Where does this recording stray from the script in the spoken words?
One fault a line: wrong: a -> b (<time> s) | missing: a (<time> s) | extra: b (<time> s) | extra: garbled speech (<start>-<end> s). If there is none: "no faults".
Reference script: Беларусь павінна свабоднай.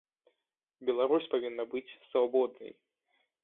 extra: быць (1.8 s)